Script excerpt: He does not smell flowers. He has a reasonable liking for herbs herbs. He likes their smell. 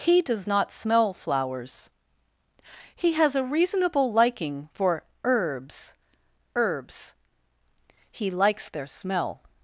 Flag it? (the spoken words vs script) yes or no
no